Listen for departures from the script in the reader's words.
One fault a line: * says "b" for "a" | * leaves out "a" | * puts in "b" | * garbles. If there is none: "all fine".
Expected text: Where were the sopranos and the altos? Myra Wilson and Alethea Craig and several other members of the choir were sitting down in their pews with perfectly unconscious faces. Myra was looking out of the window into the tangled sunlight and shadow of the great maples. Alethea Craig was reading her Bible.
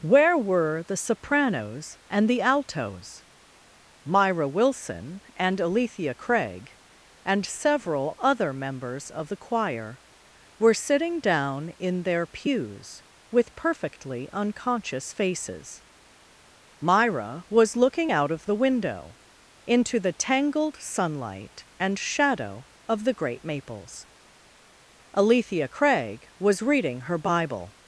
all fine